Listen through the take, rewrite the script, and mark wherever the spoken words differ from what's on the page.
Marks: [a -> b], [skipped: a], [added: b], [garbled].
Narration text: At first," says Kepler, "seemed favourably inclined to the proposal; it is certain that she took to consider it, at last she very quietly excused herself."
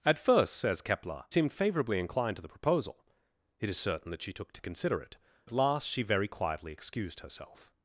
At first," says Kepler, "seemed favourably inclined to the proposal; it is certain that she took to consider it, at last she very quietly excused herself."